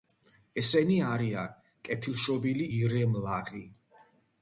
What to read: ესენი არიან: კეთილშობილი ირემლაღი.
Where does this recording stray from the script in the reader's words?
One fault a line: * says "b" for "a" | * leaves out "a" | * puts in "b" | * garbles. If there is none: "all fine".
all fine